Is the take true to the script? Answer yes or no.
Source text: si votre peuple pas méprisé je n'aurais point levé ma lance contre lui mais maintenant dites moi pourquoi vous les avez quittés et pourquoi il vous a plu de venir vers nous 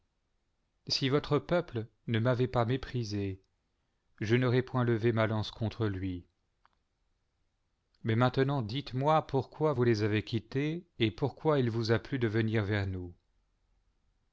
no